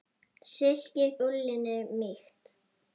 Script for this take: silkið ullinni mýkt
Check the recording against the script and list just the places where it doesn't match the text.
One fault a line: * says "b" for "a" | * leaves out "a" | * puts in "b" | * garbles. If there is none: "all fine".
all fine